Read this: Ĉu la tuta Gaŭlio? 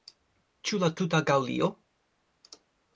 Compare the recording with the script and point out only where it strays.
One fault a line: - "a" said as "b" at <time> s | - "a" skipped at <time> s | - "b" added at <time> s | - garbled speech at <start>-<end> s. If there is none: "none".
none